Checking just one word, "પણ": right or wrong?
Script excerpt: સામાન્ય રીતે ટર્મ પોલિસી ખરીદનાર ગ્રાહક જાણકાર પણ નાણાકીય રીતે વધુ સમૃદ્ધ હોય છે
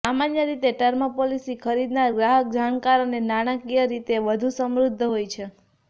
wrong